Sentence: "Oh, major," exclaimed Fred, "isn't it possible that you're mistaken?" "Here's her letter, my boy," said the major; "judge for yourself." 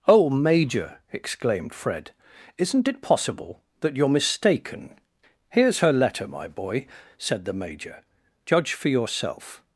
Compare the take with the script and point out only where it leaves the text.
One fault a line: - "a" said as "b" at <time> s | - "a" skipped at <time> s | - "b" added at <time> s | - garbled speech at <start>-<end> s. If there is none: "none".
none